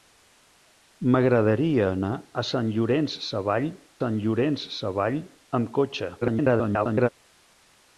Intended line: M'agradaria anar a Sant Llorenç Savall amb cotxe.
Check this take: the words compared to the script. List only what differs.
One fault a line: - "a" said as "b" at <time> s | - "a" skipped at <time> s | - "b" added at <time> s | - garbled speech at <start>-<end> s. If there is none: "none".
- "Sant Llorenç Savall" added at 4.0 s
- garbled speech at 6.2-7.1 s